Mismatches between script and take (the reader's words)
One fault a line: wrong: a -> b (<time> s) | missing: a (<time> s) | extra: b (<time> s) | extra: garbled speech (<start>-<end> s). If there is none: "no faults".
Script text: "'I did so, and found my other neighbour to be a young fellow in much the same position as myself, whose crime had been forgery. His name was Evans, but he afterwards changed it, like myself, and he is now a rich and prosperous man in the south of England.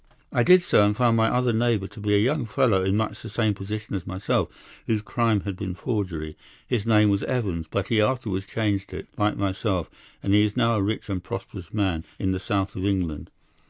no faults